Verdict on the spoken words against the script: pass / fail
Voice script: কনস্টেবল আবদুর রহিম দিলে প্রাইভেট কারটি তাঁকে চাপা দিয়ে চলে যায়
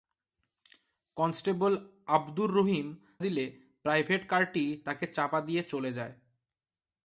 pass